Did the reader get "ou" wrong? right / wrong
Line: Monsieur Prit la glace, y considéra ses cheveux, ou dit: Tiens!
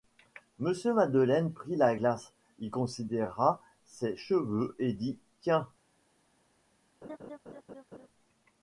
wrong